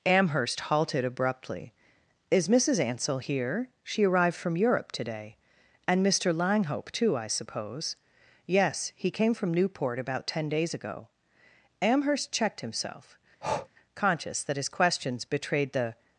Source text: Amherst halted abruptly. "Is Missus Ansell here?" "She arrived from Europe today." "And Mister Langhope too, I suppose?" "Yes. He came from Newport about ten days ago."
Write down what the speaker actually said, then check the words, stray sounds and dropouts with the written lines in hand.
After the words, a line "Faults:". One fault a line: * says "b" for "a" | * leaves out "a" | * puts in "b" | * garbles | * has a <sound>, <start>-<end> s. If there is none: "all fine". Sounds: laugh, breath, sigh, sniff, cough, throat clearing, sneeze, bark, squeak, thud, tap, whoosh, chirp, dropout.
Amherst halted abruptly. "Is Missus Ansell here?" "She arrived from Europe today." "And Mister Langhope too, I suppose?" "Yes. He came from Newport about ten days ago." Amherst checked himself, conscious that his questions betrayed the
Faults:
* puts in "Amherst checked himself conscious that his questions betrayed the"
* has a breath, 13.4-13.7 s